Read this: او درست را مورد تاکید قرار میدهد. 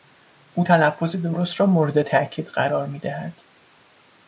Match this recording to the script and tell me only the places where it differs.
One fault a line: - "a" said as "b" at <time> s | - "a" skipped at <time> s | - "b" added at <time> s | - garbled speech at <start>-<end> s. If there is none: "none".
- "تلفظ" added at 0.6 s